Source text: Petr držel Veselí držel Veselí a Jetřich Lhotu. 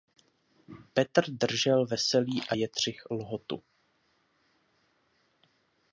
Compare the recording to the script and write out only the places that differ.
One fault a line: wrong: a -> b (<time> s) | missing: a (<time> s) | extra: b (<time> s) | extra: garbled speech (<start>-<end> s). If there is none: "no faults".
missing: držel Veselí (2.4 s)